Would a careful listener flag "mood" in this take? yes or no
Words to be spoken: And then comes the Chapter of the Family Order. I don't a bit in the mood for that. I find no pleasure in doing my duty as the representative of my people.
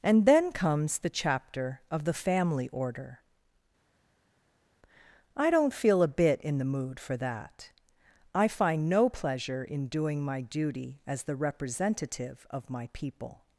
no